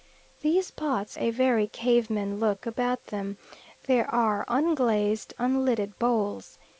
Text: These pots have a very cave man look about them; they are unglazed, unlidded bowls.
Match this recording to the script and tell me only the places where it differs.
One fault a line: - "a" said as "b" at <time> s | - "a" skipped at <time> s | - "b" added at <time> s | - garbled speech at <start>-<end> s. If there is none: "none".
- "have" skipped at 1.2 s